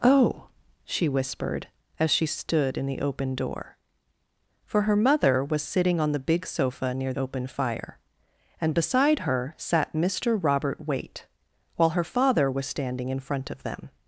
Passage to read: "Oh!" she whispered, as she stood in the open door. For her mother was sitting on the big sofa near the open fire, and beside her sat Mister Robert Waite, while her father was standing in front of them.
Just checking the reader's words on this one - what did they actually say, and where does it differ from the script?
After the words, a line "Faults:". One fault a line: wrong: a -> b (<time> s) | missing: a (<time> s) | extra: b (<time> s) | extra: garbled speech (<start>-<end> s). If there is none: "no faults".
"Oh!" she whispered, as she stood in the open door. For her mother was sitting on the big sofa near open fire, and beside her sat Mister Robert Waite, while her father was standing in front of them.
Faults:
missing: the (7.1 s)